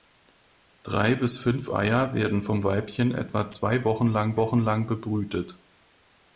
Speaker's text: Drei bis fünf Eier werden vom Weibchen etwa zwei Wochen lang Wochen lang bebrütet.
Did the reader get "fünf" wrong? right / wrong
right